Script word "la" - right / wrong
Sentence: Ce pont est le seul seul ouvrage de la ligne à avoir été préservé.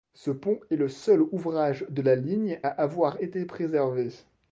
right